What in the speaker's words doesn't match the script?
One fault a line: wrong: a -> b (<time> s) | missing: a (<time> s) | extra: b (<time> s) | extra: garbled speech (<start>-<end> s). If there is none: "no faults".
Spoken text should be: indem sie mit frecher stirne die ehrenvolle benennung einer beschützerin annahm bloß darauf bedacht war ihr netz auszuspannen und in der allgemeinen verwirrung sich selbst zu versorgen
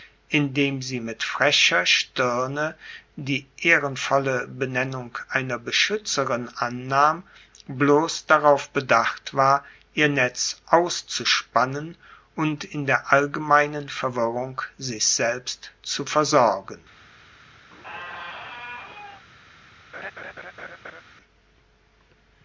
no faults